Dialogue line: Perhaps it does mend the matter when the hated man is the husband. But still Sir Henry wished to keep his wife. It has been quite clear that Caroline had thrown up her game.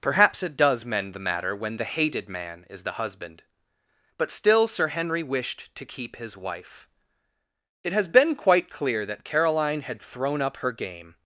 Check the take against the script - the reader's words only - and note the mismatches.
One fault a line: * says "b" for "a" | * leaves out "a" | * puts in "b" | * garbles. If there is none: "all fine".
all fine